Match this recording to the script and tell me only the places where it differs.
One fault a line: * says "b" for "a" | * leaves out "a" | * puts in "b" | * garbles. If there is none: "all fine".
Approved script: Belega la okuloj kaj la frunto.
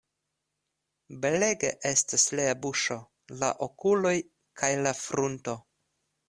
* puts in "estas lia buŝo"